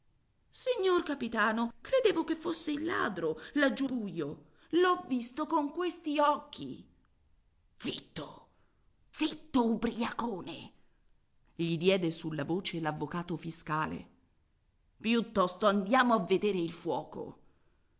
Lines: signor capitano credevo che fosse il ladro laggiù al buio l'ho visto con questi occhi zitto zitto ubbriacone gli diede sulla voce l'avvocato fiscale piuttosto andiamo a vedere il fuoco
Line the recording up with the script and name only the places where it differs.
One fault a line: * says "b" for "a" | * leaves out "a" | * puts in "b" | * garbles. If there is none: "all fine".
* leaves out "al"